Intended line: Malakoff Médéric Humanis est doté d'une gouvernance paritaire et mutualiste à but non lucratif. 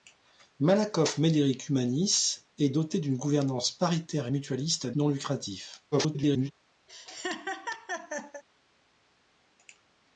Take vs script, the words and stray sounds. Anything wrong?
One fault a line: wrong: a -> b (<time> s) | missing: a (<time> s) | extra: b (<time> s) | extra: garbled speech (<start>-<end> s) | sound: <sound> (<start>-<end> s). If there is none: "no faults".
missing: but (4.9 s)
extra: garbled speech (5.9-6.5 s)
sound: laugh (6.9-8.4 s)